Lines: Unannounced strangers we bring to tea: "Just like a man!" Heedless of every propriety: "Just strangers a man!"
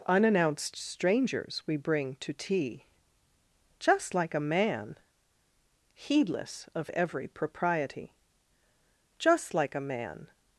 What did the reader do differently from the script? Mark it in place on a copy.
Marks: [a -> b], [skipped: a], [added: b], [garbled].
Unannounced strangers we bring to tea: "Just like a man!" Heedless of every propriety: "Just [strangers -> like] a man!"